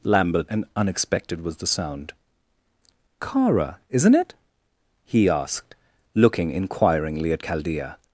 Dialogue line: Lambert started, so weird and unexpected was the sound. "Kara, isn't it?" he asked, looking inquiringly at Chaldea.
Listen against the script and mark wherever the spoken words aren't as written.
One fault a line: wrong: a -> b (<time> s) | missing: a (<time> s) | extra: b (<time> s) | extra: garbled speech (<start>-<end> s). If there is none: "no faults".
missing: started so weird (0.5 s)